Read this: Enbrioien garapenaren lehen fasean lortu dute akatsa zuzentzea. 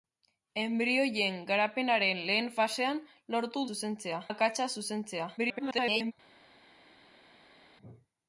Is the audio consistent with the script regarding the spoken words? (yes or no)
no